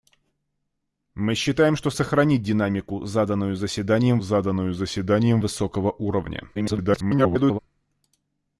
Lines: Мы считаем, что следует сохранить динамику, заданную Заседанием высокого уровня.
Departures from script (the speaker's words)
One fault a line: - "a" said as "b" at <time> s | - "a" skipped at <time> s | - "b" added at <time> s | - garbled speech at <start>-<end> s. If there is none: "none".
- "следует" skipped at 1.9 s
- "заданную Заседанием" added at 4.2 s
- garbled speech at 6.5-7.6 s